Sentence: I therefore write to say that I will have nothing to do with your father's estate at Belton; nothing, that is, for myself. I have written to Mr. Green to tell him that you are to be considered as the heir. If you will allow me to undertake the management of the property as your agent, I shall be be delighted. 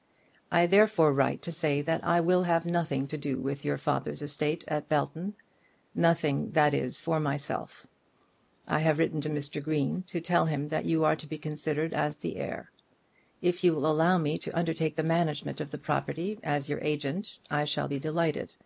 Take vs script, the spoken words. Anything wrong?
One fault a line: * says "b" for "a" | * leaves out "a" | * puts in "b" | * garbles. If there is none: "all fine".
* leaves out "be"